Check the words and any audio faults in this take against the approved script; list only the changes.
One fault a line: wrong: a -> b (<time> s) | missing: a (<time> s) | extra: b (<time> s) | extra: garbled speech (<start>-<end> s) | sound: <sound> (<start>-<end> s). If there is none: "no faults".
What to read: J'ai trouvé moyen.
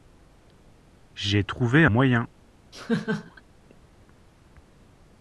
sound: laugh (2.7-3.4 s)